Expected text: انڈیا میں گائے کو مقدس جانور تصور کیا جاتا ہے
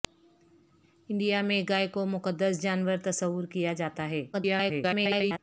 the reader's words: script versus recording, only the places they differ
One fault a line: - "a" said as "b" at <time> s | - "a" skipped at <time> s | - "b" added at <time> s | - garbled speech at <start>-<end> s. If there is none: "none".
- garbled speech at 4.3-5.4 s